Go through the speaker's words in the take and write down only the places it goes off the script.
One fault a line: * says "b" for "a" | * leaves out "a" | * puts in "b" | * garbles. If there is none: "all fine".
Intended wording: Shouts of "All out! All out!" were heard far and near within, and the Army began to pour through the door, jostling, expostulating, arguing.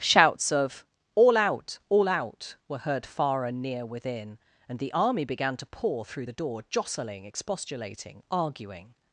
all fine